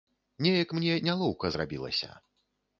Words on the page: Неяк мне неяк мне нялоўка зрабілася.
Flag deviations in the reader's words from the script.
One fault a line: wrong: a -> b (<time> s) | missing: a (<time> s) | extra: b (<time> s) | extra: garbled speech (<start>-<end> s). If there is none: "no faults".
missing: неяк мне (0.9 s)